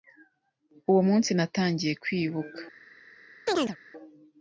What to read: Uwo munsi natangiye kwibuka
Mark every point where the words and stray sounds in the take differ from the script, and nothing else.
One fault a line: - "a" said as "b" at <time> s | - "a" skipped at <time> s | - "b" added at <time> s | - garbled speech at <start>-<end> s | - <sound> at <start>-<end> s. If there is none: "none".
- chirp at 3.5-3.8 s